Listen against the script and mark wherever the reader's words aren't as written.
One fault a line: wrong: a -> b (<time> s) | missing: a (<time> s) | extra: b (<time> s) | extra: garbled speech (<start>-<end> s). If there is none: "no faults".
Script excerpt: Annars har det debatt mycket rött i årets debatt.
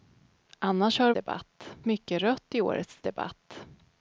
no faults